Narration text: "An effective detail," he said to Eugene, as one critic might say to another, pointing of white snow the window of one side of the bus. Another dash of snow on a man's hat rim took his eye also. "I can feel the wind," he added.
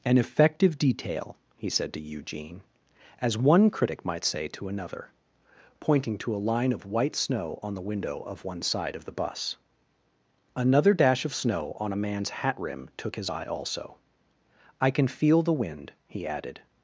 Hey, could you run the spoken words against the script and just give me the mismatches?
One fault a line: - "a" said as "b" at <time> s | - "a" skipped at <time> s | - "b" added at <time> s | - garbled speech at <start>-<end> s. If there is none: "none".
- "to a line" added at 6.2 s
- "on" added at 7.6 s